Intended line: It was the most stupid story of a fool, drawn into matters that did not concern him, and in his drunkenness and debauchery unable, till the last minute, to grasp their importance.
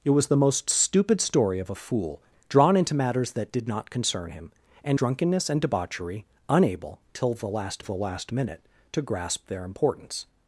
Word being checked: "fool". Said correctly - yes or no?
yes